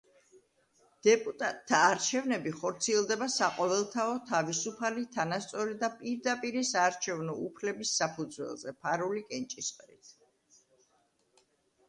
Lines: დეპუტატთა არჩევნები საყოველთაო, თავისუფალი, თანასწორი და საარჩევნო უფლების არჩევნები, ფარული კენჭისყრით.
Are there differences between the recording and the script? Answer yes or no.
yes